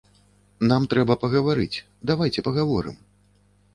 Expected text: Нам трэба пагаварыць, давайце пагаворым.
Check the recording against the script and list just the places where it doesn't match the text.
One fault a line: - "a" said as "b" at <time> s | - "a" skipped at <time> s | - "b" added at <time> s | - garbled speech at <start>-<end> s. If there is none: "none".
none